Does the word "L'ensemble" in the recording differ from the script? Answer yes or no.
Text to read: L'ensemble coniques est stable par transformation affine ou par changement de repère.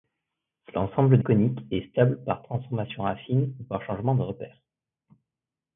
no